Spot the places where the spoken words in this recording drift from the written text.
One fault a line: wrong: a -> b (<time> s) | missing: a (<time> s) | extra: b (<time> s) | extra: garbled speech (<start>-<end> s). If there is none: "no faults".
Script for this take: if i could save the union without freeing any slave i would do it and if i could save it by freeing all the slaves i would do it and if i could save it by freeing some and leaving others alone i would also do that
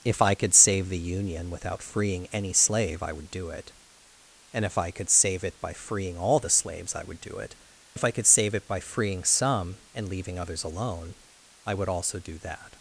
missing: and (7.5 s)